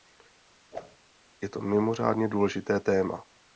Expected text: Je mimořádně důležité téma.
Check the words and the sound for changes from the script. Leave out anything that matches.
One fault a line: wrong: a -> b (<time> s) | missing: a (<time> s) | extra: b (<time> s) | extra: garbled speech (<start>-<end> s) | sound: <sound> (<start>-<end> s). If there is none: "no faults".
sound: whoosh (0.7-1.0 s)
extra: to (1.5 s)